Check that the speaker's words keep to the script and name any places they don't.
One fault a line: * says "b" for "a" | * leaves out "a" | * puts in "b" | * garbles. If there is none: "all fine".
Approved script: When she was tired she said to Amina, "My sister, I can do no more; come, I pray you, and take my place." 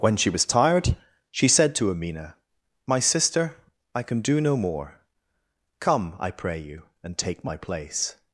all fine